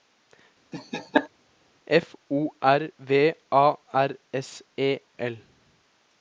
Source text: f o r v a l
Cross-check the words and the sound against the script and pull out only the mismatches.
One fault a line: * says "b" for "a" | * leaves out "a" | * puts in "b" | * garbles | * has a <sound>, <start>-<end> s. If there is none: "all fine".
* has a laugh, 0.7-1.3 s
* puts in "r s e"